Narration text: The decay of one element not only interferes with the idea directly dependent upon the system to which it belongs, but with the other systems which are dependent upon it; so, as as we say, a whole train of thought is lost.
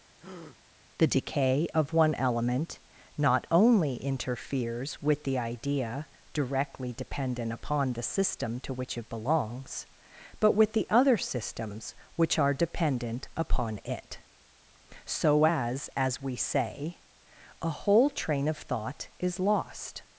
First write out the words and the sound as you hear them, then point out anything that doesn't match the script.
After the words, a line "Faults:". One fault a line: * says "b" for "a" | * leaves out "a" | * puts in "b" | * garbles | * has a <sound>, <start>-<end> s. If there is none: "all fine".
The decay of one element not only interferes with the idea directly dependent upon the system to which it belongs, but with the other systems which are dependent upon it; so, as as we say, a whole train of thought is lost.
Faults:
* has a breath, 0.2-0.6 s